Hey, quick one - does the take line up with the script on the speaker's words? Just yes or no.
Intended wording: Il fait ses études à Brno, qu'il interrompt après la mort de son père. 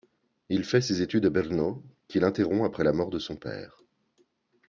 yes